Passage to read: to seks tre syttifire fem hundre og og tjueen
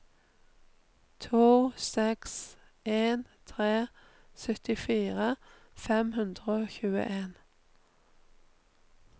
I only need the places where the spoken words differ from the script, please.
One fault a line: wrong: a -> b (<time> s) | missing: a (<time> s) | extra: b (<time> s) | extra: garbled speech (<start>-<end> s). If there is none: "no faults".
extra: en (2.9 s)
missing: og (6.7 s)